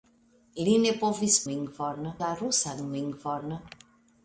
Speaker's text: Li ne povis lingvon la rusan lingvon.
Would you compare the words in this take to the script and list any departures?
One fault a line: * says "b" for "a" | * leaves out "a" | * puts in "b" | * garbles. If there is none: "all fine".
all fine